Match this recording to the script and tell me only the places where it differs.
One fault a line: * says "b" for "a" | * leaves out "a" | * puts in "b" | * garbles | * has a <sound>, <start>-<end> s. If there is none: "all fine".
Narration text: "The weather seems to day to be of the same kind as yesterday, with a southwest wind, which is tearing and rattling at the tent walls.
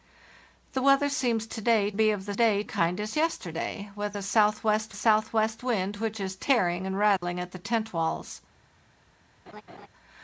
* leaves out "to"
* says "day" for "same"
* puts in "southwest"
* has a dropout, 7.2-7.2 s
* has a laugh, 9.5-9.9 s